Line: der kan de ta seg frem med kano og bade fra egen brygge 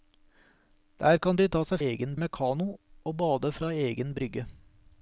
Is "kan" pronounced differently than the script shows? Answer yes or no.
no